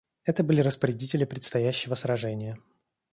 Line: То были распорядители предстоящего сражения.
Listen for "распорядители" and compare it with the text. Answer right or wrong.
right